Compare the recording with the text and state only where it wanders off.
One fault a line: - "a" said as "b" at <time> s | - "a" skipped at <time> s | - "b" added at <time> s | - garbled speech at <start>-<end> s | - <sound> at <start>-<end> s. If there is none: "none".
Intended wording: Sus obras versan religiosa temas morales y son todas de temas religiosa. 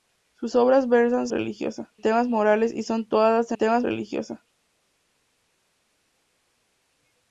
none